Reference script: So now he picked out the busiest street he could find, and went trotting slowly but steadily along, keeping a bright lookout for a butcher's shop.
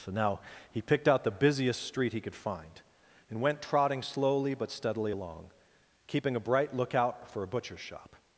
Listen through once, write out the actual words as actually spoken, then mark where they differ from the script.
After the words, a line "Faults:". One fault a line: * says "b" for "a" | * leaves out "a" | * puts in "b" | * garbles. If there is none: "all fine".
So now he picked out the busiest street he could find, and went trotting slowly but steadily along, keeping a bright lookout for a butcher's shop.
Faults:
all fine